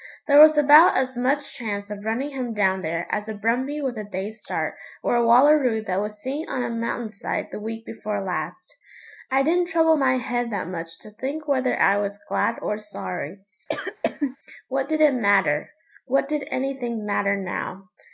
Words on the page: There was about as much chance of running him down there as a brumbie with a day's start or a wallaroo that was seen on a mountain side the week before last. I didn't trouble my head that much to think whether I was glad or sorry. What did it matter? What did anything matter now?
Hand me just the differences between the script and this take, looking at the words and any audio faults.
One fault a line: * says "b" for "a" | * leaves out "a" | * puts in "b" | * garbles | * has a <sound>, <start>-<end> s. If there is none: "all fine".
* has a cough, 13.7-14.4 s